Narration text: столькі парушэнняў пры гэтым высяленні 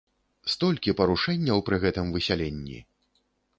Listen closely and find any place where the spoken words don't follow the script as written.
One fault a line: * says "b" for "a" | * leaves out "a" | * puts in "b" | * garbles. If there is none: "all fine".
all fine